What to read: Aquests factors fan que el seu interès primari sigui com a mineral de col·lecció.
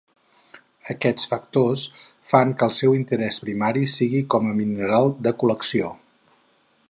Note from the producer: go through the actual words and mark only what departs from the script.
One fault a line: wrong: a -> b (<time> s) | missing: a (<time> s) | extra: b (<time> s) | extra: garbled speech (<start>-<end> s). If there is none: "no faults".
no faults